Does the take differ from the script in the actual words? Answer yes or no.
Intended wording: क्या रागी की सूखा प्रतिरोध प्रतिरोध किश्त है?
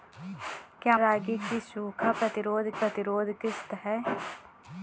no